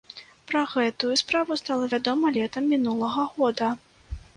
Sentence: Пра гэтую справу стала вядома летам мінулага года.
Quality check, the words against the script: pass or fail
pass